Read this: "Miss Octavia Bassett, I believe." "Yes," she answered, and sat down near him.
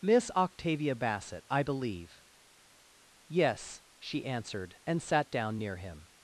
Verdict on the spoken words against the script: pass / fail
pass